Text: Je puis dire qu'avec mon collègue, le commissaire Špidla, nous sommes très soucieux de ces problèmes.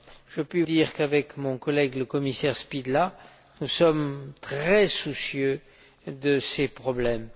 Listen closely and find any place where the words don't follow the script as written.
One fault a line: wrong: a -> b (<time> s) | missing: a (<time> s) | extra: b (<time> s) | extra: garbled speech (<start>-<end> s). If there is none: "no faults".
no faults